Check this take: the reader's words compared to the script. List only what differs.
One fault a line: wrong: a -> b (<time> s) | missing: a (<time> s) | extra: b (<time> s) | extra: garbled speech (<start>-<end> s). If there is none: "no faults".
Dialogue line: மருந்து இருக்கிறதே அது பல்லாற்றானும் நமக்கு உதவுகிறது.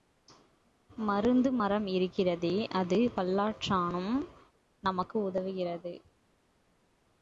extra: மரம் (1.5 s)